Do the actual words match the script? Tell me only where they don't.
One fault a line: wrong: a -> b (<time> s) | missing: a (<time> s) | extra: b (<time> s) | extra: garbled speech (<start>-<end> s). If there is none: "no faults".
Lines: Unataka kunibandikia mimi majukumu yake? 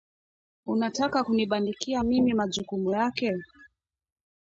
no faults